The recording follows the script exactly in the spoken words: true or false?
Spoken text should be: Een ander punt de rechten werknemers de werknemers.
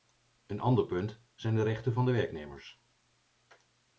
false